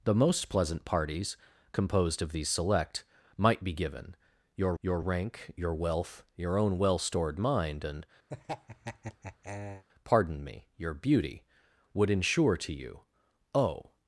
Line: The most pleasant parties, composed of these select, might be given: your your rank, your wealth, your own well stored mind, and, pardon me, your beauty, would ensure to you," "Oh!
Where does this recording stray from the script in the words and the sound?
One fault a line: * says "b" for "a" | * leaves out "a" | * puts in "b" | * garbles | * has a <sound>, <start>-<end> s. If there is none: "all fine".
* has a laugh, 8.3-9.8 s